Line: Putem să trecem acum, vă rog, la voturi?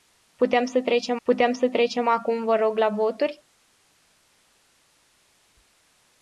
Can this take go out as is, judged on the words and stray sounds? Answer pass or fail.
fail